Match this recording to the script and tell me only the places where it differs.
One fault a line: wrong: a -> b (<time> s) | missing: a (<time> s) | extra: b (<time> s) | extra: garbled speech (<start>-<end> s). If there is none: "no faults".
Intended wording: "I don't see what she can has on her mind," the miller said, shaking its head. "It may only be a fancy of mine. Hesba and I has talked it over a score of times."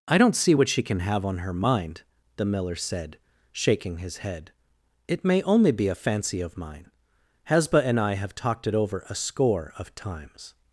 wrong: has -> have (1.0 s)
wrong: its -> his (4.0 s)
wrong: has -> have (8.1 s)